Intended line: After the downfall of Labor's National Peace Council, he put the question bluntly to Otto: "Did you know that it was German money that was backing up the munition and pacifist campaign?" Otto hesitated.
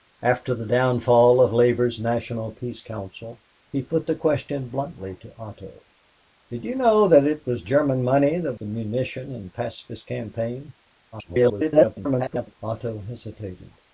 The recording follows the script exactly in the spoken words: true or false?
false